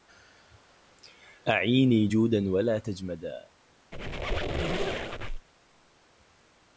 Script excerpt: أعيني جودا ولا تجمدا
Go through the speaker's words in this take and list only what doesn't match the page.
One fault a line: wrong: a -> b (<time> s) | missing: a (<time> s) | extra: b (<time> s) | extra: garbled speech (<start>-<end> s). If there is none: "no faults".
no faults